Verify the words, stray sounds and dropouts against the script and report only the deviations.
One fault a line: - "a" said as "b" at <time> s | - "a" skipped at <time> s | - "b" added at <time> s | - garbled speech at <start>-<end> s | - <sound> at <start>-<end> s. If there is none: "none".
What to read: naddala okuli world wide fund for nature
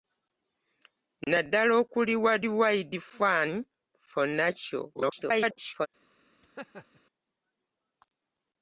- garbled speech at 4.9-5.9 s
- laugh at 6.4-7.0 s